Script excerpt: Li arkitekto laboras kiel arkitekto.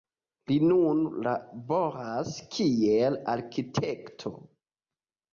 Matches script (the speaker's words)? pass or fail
fail